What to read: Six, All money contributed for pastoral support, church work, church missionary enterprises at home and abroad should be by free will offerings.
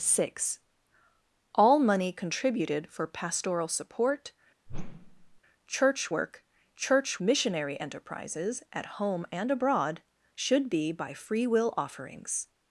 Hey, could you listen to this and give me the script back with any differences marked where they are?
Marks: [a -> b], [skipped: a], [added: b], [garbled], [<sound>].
Six, All money contributed for pastoral support, [whoosh] church work, church missionary enterprises at home and abroad should be by free will offerings.